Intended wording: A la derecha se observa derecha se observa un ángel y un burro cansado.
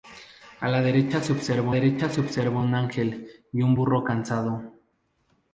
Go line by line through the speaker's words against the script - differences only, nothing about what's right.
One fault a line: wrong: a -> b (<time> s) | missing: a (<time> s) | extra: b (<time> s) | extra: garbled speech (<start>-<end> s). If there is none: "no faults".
no faults